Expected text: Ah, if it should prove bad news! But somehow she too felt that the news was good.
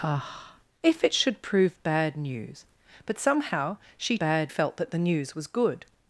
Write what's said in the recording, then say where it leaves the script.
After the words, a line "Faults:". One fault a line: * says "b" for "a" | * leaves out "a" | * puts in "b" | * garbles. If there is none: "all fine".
Ah, if it should prove bad news! But somehow she bad felt that the news was good.
Faults:
* says "bad" for "too"